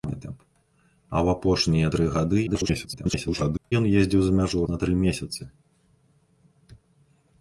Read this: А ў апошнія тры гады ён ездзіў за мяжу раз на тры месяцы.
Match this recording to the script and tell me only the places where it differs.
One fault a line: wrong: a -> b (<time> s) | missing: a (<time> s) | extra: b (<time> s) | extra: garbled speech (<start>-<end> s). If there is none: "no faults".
extra: garbled speech (2.5-3.7 s)
missing: раз (4.6 s)